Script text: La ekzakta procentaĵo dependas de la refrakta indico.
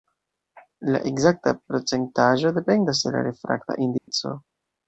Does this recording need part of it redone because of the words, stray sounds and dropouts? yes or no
yes